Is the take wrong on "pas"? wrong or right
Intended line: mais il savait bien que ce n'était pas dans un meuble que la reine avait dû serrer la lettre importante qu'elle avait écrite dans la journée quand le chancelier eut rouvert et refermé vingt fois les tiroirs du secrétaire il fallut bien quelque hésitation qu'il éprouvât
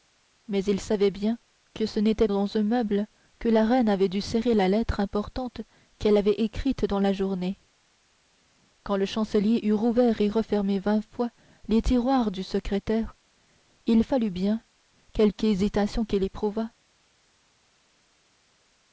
wrong